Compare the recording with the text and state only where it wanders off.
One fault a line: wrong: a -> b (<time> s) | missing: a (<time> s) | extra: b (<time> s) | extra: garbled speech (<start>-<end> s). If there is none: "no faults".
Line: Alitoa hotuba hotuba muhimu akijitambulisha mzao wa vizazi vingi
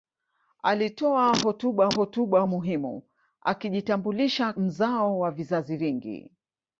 no faults